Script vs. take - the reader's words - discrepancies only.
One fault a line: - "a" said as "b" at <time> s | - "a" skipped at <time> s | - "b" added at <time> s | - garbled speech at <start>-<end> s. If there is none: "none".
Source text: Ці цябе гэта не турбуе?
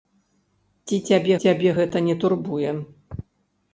- "цябе" added at 1.4 s